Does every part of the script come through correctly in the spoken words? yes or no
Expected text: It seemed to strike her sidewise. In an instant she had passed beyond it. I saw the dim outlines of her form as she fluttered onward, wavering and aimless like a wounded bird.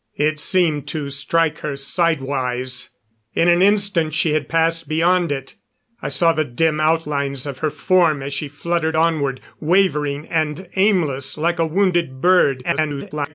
no